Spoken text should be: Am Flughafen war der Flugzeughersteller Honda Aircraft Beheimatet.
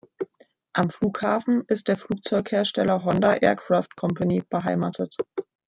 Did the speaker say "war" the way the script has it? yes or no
no